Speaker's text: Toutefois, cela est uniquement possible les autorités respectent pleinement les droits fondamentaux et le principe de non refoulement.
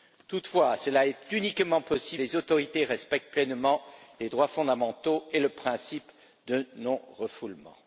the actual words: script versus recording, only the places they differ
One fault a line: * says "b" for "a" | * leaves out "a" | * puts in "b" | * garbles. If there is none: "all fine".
all fine